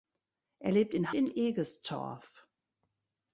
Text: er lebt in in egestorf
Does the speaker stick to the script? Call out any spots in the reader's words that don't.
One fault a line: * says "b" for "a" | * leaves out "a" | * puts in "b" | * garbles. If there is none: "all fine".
all fine